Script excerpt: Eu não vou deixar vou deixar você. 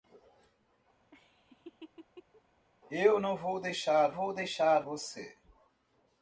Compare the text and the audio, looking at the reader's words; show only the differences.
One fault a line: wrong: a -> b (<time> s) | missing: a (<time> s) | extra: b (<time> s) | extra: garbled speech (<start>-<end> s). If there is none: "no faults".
no faults